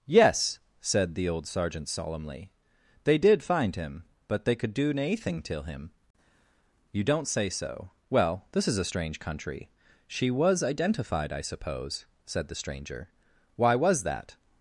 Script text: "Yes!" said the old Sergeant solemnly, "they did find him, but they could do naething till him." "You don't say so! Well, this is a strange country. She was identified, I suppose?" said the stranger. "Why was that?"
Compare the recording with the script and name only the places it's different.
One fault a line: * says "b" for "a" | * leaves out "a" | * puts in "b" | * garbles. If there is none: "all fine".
all fine